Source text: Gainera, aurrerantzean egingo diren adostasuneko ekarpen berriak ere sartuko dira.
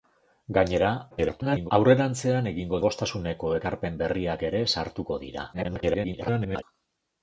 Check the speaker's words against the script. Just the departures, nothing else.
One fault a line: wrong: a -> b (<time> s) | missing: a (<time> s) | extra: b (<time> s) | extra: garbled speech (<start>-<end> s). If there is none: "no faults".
extra: garbled speech (1.1-1.7 s)
missing: diren (2.8 s)
extra: garbled speech (5.5-6.6 s)